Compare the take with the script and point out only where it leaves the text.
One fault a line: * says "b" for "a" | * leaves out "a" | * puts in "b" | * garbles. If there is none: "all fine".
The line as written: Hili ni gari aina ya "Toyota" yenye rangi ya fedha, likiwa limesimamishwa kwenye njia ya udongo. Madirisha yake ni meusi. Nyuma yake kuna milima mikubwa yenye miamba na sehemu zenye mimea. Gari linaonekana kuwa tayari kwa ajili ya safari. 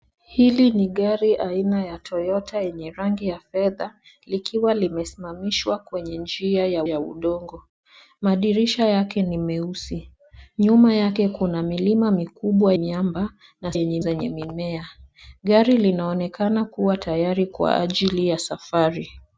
* puts in "ya"
* leaves out "yenye"
* says "yenye" for "sehemu"